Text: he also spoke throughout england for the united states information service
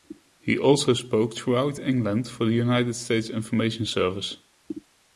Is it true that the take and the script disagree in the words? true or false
false